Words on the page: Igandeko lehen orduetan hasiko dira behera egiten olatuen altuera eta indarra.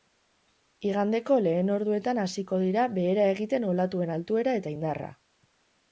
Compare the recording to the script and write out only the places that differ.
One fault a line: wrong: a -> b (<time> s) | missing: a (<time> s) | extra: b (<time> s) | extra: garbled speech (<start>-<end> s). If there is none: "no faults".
no faults